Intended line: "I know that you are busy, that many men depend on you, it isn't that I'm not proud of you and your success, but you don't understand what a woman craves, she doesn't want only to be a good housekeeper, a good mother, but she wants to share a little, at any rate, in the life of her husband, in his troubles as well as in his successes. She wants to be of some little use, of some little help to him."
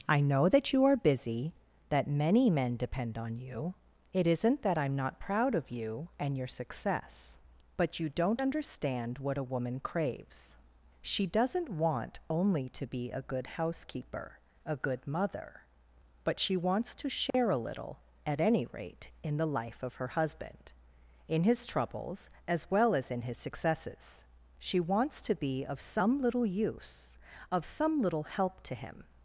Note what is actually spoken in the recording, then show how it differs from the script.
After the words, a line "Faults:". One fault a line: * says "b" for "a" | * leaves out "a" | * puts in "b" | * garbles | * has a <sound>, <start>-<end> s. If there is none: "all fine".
"I know that you are busy, that many men depend on you, it isn't that I'm not proud of you and your success, but you don't understand what a woman craves, she doesn't want only to be a good housekeeper, a good mother, but she wants to share a little, at any rate, in the life of her husband, in his troubles as well as in his successes. She wants to be of some little use, of some little help to him."
Faults:
* has a dropout, 17.3-17.3 s